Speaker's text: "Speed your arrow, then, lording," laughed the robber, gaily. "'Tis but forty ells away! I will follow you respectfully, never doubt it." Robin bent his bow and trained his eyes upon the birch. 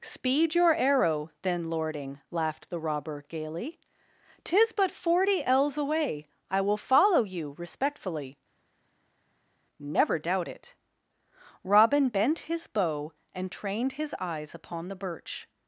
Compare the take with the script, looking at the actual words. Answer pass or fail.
pass